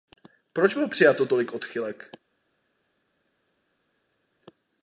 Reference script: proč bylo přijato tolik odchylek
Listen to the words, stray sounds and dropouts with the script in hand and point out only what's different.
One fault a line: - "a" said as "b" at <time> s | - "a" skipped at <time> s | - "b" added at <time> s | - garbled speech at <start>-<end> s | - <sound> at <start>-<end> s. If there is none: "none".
none